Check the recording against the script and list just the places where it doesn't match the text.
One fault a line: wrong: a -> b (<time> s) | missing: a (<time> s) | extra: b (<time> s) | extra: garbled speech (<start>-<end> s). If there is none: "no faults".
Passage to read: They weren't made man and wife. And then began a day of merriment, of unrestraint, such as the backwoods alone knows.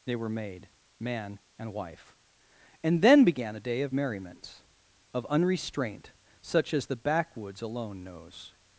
wrong: weren't -> were (0.1 s)